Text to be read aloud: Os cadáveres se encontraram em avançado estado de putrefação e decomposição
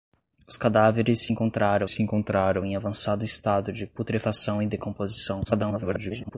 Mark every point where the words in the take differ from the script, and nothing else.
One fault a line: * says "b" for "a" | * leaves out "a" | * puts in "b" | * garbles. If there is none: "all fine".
* puts in "se encontraram"
* garbles